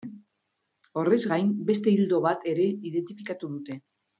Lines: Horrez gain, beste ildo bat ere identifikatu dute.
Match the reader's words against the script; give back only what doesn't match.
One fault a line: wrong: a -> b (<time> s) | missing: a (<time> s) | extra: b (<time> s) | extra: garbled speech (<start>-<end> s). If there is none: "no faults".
no faults